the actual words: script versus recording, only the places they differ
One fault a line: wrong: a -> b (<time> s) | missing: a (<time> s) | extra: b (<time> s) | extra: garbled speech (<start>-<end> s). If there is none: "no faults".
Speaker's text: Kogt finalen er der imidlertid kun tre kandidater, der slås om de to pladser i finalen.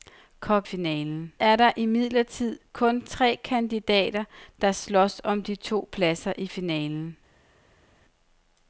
no faults